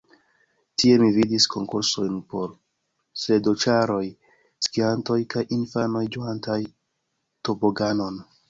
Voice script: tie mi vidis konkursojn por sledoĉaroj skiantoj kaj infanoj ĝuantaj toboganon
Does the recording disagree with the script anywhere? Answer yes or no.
no